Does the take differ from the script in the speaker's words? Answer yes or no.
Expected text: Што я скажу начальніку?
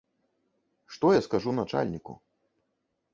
no